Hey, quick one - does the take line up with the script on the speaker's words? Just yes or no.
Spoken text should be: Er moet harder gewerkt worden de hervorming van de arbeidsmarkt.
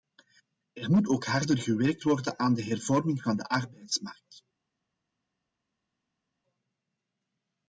no